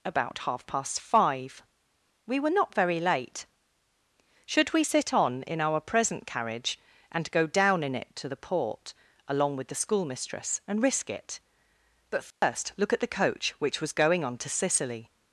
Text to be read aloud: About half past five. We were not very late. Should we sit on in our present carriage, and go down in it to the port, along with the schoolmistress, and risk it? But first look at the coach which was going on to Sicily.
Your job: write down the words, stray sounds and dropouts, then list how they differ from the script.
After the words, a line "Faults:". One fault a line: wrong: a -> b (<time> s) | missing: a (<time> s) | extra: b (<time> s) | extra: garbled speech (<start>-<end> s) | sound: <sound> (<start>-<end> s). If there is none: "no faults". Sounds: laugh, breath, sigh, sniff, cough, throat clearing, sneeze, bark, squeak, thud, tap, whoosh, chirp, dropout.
About half past five. We were not very late. Should we sit on in our present carriage, and go down in it to the port, along with the schoolmistress, and risk it? But first look at the coach which was going on to Sicily.
Faults:
sound: dropout (12.3-12.4 s)